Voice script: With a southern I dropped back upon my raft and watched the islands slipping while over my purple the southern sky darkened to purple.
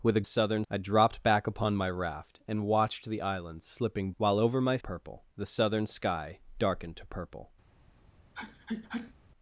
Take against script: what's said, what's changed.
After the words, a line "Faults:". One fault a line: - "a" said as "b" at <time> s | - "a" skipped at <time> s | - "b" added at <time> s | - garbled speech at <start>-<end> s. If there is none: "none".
With a southern I dropped back upon my raft and watched the islands slipping while over my purple the southern sky darkened to purple.
Faults:
none